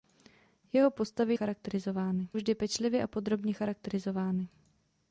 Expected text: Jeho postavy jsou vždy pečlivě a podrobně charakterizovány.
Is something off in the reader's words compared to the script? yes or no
yes